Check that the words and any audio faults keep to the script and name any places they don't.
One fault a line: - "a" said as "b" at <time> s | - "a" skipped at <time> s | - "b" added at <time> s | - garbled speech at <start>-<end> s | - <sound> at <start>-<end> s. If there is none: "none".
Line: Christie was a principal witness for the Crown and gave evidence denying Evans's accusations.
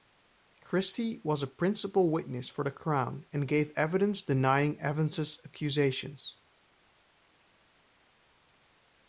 none